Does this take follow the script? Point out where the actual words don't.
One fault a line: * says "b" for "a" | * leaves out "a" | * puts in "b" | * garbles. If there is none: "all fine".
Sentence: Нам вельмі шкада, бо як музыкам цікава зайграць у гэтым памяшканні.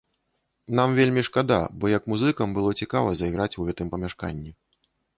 * puts in "было"